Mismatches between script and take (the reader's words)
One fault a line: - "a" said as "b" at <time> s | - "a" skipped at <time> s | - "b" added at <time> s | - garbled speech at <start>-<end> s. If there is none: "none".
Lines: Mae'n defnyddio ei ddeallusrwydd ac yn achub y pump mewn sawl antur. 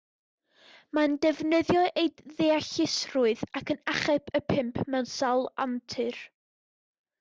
none